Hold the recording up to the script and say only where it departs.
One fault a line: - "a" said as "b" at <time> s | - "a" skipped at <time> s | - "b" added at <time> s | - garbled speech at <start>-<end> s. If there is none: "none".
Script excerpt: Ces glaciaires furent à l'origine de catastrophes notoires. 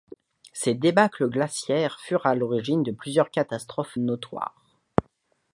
- "débâcles" added at 0.7 s
- "plusieurs" added at 2.9 s